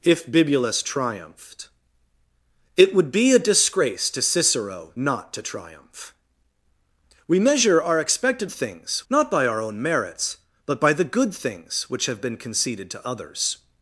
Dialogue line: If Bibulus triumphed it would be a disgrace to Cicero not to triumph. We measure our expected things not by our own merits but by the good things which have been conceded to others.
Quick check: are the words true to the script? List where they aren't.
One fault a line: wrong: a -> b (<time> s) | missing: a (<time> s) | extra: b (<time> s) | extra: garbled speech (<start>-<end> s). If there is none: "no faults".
no faults